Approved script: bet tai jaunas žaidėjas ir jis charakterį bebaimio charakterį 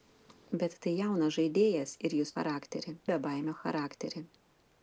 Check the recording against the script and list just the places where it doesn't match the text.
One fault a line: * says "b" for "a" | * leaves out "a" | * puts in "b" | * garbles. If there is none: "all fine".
all fine